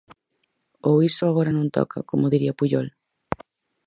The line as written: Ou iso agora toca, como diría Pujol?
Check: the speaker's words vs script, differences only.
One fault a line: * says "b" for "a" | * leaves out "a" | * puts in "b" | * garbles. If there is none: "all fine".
* puts in "non"